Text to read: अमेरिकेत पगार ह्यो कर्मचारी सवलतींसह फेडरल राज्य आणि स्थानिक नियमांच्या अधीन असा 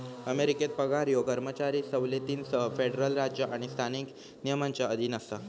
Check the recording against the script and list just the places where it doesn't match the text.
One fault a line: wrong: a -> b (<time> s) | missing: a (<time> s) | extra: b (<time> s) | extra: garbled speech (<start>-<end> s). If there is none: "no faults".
no faults